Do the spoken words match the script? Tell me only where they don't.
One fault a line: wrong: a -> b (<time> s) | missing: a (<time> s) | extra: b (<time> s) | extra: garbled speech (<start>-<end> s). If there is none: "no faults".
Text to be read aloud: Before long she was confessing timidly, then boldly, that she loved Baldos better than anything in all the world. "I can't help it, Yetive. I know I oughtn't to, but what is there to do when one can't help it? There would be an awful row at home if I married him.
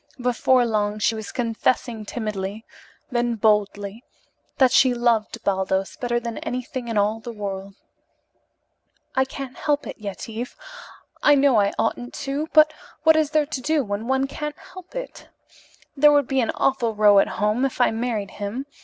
no faults